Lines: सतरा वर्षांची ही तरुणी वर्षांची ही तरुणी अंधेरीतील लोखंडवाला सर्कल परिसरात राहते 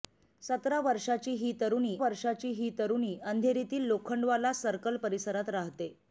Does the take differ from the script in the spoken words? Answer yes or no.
no